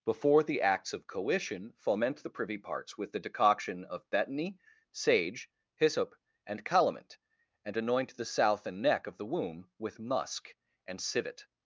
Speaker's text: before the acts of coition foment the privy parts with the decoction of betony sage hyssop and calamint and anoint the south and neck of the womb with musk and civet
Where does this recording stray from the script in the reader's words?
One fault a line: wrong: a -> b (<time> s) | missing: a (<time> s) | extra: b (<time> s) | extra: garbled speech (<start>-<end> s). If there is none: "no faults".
no faults